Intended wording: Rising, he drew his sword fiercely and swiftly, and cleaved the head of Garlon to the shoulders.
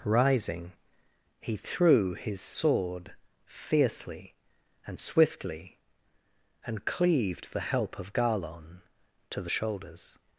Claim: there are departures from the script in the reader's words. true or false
true